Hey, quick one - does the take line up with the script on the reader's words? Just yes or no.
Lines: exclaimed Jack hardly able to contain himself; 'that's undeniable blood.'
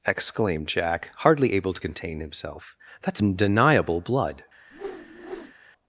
yes